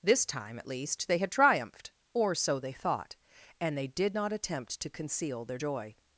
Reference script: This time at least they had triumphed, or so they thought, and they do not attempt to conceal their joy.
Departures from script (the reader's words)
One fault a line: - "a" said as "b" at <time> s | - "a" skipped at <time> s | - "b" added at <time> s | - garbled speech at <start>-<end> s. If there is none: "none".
- "do" said as "did" at 3.9 s